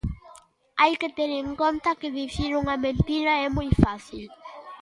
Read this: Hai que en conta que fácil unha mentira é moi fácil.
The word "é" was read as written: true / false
true